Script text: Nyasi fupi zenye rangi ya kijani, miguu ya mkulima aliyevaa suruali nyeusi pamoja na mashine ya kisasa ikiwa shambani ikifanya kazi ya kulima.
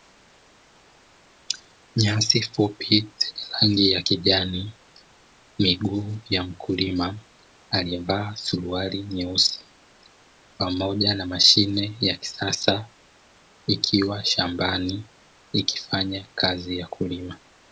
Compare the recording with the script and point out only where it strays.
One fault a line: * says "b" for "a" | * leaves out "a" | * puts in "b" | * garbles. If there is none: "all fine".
all fine